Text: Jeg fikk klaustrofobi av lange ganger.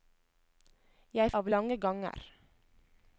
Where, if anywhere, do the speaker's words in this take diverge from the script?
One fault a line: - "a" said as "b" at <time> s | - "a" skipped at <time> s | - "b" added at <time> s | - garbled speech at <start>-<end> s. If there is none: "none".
- "fikk klaustrofobi" skipped at 1.3 s